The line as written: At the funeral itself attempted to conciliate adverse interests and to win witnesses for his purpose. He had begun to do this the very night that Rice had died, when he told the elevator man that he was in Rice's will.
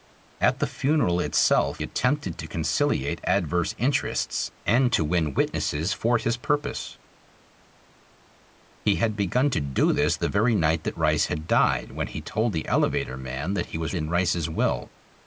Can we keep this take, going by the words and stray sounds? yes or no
yes